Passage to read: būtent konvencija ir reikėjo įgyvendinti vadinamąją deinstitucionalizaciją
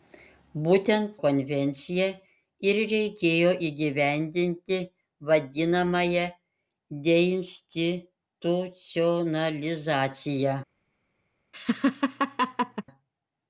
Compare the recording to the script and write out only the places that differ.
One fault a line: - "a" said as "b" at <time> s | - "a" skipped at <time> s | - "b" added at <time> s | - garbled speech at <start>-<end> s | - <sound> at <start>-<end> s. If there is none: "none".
- laugh at 11.5-12.8 s